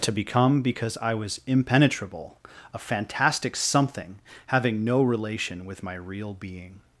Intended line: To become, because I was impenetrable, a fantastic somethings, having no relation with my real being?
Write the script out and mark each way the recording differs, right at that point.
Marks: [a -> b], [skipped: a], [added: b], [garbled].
To become, because I was impenetrable, a fantastic [somethings, -> something] having no relation with my real being?